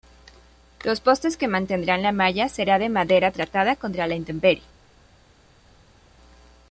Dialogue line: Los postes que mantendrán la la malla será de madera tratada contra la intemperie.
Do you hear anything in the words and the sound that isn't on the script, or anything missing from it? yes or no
yes